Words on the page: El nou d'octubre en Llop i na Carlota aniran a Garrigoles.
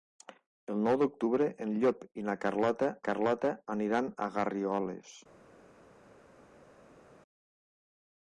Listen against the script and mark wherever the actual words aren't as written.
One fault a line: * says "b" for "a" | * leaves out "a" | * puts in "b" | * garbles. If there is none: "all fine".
* puts in "Carlota"